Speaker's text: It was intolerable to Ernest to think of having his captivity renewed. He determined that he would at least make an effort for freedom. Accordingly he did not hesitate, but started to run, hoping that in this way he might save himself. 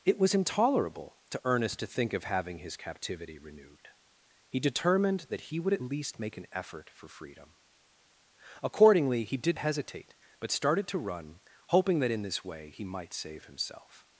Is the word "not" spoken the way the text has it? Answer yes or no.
no